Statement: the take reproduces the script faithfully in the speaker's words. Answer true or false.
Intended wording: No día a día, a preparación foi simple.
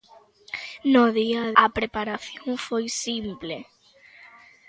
false